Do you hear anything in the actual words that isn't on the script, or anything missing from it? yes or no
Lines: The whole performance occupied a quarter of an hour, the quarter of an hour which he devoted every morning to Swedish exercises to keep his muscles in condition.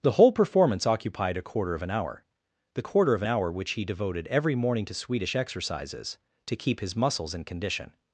no